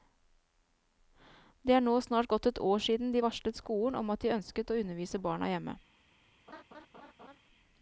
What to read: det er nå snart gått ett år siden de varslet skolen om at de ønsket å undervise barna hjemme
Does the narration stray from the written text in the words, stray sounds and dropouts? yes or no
yes